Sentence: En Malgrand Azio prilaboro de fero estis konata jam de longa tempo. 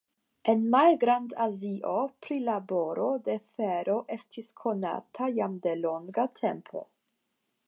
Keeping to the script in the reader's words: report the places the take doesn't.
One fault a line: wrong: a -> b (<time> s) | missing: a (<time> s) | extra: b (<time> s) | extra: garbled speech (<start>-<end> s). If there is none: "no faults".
no faults